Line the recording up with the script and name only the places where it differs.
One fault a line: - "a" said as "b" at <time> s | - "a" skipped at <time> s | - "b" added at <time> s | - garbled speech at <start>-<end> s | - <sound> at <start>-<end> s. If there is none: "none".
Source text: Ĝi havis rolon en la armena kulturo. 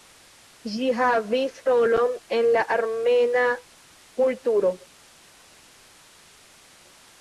none